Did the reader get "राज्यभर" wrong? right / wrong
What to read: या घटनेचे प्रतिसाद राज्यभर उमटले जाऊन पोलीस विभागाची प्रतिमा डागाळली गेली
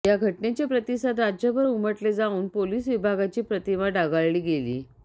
right